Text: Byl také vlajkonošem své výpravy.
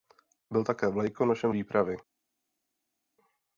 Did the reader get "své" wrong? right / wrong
wrong